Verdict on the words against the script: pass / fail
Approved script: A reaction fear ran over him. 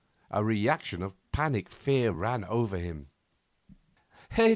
fail